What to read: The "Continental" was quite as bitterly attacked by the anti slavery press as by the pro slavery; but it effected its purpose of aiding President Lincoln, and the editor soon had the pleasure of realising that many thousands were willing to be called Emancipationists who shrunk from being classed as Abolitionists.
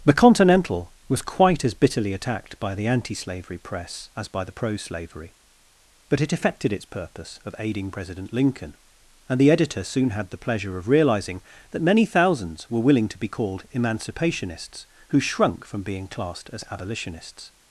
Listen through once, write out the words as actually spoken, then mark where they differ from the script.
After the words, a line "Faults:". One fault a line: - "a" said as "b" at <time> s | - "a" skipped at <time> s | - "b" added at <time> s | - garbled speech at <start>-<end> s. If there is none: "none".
The "Continental" was quite as bitterly attacked by the anti slavery press as by the pro slavery; but it effected its purpose of aiding President Lincoln, and the editor soon had the pleasure of realising that many thousands were willing to be called Emancipationists who shrunk from being classed as Abolitionists.
Faults:
none